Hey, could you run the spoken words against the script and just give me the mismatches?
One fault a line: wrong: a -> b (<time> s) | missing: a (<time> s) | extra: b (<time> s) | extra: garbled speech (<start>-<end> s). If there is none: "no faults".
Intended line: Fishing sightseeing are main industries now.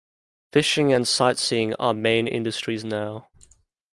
extra: and (0.9 s)